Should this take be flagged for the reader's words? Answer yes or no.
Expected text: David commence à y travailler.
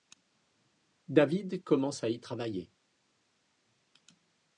no